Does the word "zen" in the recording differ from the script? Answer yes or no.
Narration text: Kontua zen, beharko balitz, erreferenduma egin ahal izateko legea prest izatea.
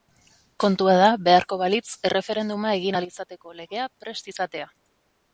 yes